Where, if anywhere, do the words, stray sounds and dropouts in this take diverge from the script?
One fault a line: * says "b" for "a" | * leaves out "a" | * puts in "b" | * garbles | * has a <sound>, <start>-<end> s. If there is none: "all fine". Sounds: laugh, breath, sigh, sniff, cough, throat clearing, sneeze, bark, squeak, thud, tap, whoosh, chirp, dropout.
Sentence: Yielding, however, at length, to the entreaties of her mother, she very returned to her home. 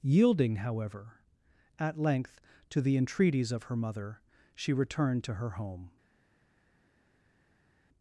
* leaves out "very"